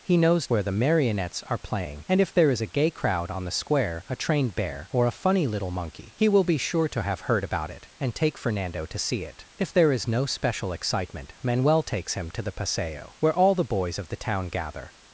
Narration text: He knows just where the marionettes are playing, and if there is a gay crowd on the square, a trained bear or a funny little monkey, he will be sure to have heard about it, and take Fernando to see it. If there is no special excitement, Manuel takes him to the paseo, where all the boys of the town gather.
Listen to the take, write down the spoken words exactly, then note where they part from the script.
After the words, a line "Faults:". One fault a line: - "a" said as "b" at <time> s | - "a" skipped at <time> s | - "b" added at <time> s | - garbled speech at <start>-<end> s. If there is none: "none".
He knows where the marionettes are playing, and if there is a gay crowd on the square, a trained bear or a funny little monkey, he will be sure to have heard about it, and take Fernando to see it. If there is no special excitement, Manuel takes him to the paseo, where all the boys of the town gather.
Faults:
- "just" skipped at 0.5 s